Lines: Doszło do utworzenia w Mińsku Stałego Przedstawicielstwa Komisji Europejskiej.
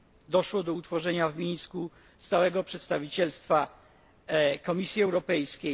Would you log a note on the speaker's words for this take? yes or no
no